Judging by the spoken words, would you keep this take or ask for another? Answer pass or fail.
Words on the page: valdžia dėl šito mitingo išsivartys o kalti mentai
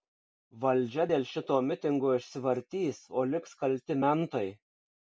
fail